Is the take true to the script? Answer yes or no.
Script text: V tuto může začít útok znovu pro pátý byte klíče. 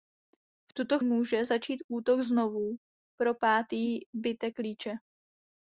yes